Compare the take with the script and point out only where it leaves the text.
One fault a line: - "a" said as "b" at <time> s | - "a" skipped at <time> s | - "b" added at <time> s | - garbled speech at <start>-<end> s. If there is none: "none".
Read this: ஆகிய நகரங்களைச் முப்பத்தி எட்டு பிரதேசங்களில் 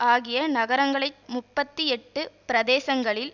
none